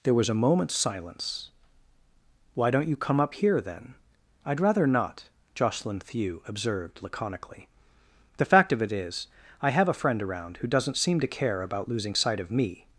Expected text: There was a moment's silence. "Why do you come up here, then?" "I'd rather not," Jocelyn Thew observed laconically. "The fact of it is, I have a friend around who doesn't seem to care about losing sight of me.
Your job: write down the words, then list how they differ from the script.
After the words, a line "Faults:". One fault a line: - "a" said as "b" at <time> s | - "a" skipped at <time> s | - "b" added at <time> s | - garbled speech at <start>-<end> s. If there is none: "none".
There was a moment's silence. "Why don't you come up here, then?" "I'd rather not," Jocelyn Thew observed laconically. "The fact of it is, I have a friend around who doesn't seem to care about losing sight of me.
Faults:
- "do" said as "don't" at 2.7 s